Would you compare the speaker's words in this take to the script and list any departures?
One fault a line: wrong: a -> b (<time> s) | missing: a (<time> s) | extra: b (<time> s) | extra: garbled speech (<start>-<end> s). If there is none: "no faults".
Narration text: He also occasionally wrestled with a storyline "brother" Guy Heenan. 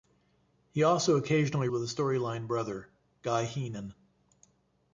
missing: wrestled (1.7 s)